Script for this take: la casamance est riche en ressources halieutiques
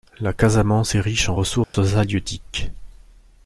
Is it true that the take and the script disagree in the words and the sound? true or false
true